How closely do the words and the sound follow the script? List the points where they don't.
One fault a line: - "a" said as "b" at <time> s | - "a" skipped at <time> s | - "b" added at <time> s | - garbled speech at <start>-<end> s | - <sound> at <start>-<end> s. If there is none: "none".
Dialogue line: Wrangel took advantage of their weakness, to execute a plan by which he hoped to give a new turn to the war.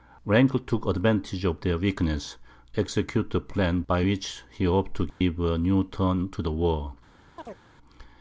- "to" skipped at 2.4 s
- dropout at 5.1-5.2 s
- chirp at 7.4-7.6 s